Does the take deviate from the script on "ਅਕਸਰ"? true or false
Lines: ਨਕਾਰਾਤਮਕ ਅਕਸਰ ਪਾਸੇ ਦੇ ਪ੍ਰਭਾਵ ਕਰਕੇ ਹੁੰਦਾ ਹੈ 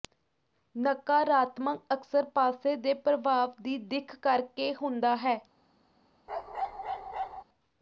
false